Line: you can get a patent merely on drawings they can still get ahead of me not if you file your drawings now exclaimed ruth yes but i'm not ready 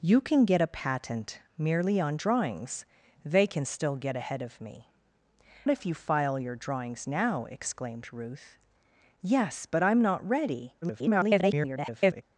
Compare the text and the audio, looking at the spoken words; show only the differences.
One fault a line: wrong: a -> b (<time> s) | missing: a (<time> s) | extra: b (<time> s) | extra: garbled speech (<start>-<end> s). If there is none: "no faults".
missing: not (4.9 s)
extra: garbled speech (10.8-12.2 s)